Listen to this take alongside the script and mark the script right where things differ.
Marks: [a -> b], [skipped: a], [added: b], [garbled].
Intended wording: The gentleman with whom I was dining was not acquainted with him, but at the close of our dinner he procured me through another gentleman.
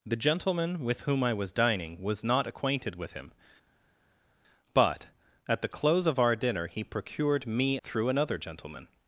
The gentleman with whom I was dining was not acquainted with him, but at the close of our dinner he procured me through another gentleman.